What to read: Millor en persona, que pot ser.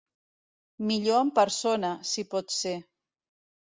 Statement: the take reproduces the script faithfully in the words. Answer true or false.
false